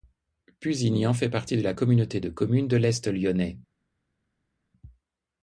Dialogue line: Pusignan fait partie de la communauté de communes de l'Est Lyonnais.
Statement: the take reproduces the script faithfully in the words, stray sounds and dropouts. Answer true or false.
true